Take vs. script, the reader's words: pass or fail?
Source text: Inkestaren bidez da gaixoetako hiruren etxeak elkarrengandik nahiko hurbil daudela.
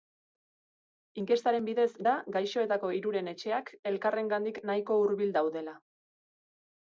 pass